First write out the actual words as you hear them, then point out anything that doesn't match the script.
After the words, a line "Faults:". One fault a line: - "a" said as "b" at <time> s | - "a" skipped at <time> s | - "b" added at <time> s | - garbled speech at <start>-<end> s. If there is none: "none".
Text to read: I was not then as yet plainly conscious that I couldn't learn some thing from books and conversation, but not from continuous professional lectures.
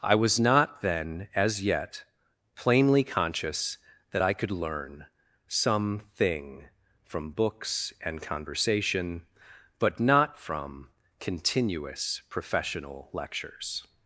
I was not then as yet plainly conscious that I could learn some thing from books and conversation, but not from continuous professional lectures.
Faults:
- "couldn't" said as "could" at 4.3 s